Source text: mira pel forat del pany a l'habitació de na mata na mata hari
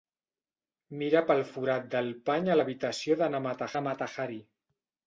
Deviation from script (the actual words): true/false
false